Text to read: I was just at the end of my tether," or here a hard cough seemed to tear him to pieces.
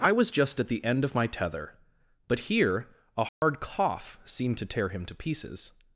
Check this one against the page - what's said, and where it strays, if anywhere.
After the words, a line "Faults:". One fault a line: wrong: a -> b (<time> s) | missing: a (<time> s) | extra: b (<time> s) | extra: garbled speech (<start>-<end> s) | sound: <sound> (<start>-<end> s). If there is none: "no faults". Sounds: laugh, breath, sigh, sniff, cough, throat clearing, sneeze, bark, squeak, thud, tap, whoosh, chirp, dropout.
I was just at the end of my tether," but here a hard cough seemed to tear him to pieces.
Faults:
wrong: or -> but (2.3 s)
sound: dropout (3.3-3.4 s)